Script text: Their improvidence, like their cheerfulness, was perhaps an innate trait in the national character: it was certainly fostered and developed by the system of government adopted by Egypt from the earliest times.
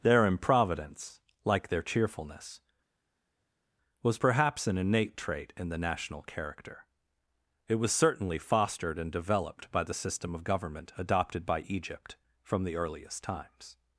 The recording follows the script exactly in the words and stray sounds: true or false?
true